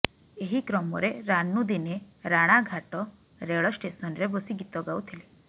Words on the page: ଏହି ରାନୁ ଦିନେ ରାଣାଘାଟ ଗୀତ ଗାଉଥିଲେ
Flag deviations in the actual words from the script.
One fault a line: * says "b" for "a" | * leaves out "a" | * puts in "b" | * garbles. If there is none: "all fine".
* puts in "କ୍ରମରେ"
* puts in "ରେଳ ଷ୍ଟେସନରେ ବସି"